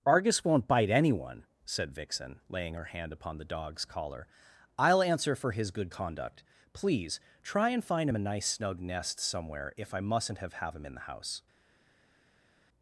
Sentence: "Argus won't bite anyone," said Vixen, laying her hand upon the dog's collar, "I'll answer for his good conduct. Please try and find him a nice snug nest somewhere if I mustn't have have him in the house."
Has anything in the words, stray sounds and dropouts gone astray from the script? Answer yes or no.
no